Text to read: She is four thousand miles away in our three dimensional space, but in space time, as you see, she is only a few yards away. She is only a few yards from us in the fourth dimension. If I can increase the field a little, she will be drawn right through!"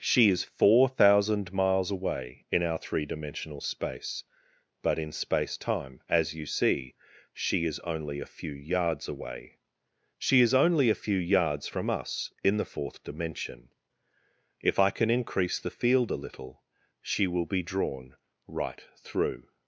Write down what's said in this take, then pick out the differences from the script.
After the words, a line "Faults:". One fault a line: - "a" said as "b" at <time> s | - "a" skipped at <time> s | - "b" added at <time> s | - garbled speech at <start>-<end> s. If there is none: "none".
She is four thousand miles away in our three dimensional space, but in space time, as you see, she is only a few yards away. She is only a few yards from us in the fourth dimension. If I can increase the field a little, she will be drawn right through!"
Faults:
none